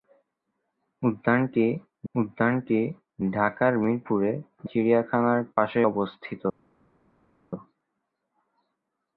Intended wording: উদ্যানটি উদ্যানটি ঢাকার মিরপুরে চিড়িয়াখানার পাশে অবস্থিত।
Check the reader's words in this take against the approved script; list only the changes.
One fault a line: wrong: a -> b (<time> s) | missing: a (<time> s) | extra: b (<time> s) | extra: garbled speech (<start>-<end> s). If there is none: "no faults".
no faults